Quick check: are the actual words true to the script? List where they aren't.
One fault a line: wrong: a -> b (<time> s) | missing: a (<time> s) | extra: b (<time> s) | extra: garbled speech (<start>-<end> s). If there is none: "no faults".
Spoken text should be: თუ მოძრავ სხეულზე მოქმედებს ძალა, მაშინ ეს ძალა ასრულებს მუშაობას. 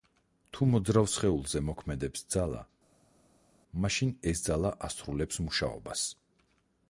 no faults